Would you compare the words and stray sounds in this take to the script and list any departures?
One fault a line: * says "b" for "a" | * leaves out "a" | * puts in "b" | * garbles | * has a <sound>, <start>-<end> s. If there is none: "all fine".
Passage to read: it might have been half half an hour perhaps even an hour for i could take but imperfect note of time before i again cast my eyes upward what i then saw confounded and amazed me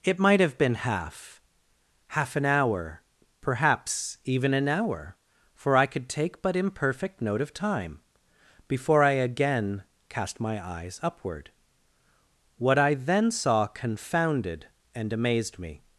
all fine